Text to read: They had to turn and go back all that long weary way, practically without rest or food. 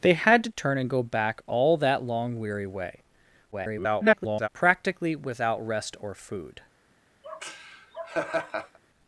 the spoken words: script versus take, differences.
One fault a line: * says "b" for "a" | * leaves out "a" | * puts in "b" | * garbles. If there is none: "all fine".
* garbles